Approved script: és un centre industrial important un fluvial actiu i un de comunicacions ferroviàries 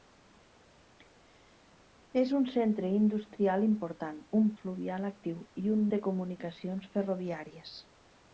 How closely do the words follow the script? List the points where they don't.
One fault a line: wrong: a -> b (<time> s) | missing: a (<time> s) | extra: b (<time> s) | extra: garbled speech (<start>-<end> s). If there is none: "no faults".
no faults